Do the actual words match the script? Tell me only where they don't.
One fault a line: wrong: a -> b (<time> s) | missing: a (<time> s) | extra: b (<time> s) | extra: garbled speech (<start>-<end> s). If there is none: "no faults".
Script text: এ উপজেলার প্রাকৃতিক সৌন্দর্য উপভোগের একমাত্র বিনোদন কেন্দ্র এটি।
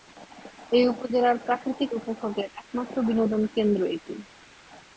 missing: সৌন্দর্য (1.9 s)